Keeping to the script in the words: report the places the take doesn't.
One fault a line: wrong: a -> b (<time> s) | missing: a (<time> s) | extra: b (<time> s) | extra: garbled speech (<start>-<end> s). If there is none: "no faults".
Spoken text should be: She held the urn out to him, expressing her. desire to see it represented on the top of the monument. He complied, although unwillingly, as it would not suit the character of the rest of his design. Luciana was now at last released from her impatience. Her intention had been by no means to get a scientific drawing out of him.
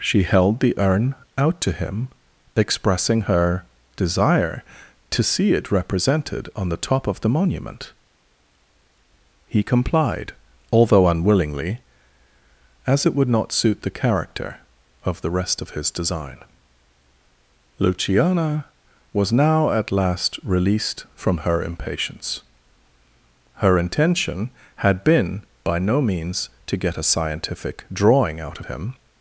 missing: of (28.6 s)